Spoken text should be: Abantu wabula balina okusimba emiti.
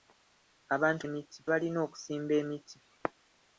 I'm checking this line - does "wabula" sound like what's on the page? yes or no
no